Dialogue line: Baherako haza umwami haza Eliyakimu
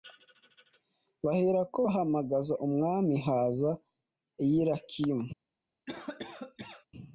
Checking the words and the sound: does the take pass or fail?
fail